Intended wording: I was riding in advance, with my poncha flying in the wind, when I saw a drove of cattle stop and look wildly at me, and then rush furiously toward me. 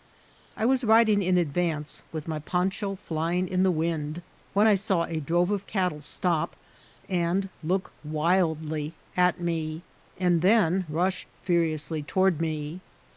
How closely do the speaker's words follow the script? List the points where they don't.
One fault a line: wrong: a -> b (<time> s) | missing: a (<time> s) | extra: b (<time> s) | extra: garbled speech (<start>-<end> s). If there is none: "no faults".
no faults